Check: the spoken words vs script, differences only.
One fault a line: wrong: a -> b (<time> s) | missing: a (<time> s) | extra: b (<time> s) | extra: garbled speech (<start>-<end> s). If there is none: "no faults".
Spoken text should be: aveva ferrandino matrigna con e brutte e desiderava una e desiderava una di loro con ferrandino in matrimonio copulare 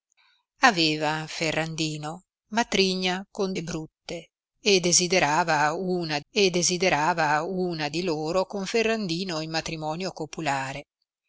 no faults